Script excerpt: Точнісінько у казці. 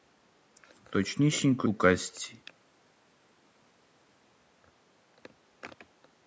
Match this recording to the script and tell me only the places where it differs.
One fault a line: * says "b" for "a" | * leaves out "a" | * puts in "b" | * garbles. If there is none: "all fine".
all fine